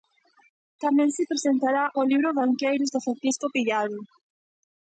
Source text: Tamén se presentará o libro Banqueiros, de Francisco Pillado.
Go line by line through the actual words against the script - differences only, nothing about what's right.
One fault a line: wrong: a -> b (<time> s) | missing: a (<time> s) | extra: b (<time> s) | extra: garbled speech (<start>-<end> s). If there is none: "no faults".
no faults